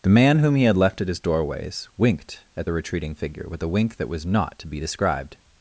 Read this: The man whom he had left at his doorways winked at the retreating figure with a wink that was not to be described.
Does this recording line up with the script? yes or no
yes